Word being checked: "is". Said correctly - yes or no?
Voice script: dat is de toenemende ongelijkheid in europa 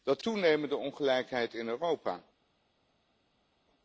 no